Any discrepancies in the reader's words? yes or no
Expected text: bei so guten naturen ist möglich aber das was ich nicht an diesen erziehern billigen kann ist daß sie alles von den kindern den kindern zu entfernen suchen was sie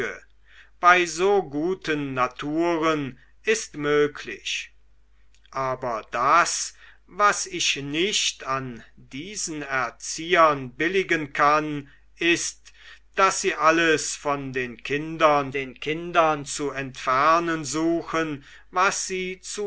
no